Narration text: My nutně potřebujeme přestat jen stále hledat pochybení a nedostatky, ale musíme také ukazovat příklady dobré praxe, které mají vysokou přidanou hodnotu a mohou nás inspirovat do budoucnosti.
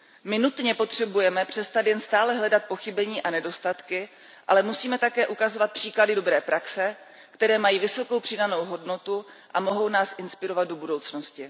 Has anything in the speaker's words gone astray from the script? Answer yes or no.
no